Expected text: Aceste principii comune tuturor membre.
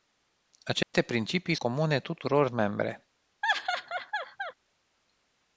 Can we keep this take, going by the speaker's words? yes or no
yes